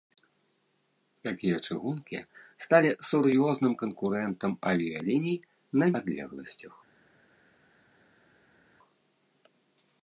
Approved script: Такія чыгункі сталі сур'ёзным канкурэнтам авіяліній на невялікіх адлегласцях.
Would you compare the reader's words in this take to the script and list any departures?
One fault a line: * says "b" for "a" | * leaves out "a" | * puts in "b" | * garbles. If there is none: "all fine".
* leaves out "невялікіх"